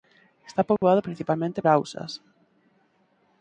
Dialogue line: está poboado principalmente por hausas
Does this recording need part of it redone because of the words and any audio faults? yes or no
yes